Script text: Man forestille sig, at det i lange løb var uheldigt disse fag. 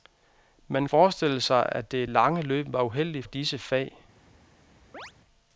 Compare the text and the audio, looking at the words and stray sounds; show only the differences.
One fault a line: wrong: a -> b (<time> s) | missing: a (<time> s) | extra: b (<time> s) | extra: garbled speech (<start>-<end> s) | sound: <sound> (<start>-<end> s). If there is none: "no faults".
sound: chirp (4.9-5.1 s)